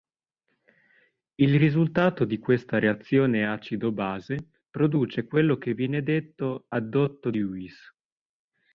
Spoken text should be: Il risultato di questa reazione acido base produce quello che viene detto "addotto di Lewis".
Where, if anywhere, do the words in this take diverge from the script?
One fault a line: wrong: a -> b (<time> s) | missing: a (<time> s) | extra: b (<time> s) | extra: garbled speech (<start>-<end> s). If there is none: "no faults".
missing: di (7.3 s)